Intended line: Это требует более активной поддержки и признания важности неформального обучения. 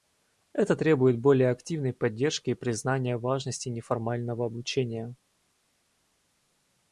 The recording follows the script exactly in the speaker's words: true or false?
true